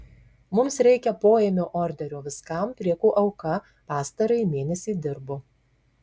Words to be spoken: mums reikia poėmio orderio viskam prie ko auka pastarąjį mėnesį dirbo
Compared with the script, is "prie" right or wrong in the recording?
right